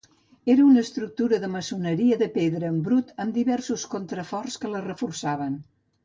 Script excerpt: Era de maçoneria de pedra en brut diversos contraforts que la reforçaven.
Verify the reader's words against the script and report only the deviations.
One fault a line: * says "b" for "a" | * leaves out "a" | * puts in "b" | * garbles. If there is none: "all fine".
* puts in "una estructura"
* puts in "amb"